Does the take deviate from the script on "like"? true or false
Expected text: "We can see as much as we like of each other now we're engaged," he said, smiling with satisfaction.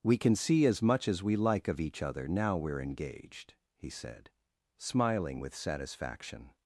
false